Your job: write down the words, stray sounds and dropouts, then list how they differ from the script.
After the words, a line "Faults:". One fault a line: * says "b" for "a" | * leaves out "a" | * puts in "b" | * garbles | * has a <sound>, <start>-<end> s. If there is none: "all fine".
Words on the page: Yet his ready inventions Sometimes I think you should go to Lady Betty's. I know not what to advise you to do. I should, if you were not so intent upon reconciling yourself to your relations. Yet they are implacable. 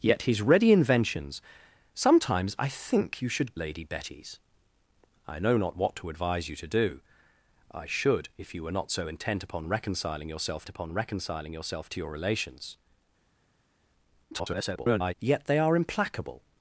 Yet his ready inventions Sometimes I think you should Lady Betty's. I know not what to advise you to do. I should, if you were not so intent upon reconciling yourself upon reconciling yourself to your relations. [garbled] Yet they are implacable.
Faults:
* leaves out "go to"
* puts in "upon reconciling yourself"
* garbles